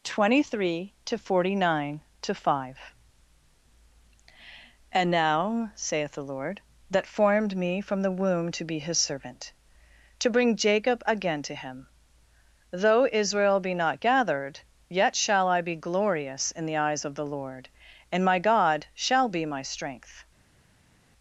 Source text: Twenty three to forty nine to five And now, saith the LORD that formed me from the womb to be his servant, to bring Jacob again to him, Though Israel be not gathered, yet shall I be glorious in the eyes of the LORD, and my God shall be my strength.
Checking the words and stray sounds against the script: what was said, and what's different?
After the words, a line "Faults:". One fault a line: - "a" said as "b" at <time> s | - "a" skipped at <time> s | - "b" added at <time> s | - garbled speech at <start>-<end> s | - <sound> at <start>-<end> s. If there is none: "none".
Twenty three to forty nine to five And now, saith the LORD that formed me from the womb to be his servant, to bring Jacob again to him, Though Israel be not gathered, yet shall I be glorious in the eyes of the LORD, and my God shall be my strength.
Faults:
none